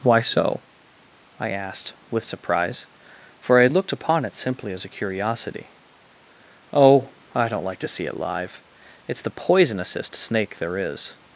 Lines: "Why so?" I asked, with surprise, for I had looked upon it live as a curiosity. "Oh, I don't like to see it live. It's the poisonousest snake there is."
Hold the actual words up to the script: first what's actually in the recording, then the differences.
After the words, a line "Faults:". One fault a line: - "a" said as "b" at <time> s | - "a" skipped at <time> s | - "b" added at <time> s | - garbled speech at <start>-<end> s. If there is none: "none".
"Why so?" I asked, with surprise, for I had looked upon it simply as a curiosity. "Oh, I don't like to see it live. It's the poisonousest snake there is."
Faults:
- "live" said as "simply" at 4.3 s